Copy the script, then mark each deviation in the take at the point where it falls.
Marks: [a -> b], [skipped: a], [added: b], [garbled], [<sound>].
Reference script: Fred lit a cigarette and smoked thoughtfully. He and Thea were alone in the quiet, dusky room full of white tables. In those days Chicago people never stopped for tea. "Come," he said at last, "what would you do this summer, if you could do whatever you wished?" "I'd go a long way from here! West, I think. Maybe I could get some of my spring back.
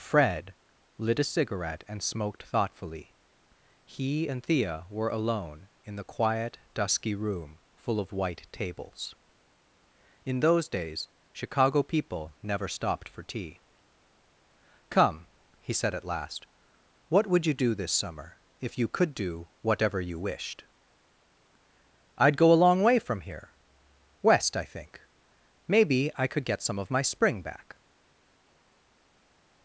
Fred lit a cigarette and smoked thoughtfully. He and Thea were alone in the quiet, dusky room full of white tables. In those days Chicago people never stopped for tea. "Come," he said at last, "what would you do this summer, if you could do whatever you wished?" "I'd go a long way from here! West, I think. Maybe I could get some of my spring back.